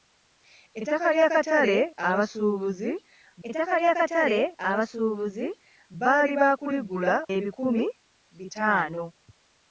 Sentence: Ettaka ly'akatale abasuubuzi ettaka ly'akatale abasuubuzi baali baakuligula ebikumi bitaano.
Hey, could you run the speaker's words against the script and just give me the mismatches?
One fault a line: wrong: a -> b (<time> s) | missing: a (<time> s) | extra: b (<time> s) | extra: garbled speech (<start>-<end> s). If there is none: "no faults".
no faults